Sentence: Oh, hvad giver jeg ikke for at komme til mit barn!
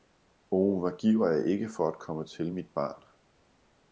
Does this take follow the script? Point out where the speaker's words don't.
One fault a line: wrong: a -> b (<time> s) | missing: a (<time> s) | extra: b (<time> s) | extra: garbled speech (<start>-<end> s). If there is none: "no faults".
no faults